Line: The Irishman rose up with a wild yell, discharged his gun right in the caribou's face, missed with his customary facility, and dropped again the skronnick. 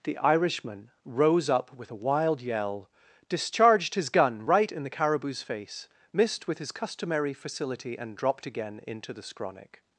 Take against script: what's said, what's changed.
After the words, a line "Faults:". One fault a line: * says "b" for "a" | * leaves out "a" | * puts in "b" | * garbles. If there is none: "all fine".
The Irishman rose up with a wild yell, discharged his gun right in the caribou's face, missed with his customary facility, and dropped again into the skronnick.
Faults:
* puts in "into"